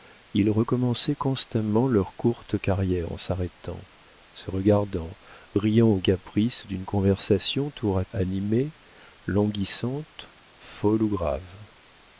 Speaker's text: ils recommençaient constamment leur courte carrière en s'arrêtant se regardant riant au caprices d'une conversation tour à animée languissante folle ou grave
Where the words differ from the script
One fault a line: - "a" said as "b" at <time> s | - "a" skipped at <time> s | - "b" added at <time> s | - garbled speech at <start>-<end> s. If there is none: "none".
none